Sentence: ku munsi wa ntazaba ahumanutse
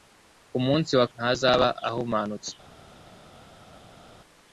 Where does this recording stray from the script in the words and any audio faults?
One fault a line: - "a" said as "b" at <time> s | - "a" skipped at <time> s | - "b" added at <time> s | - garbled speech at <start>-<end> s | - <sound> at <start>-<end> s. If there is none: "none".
none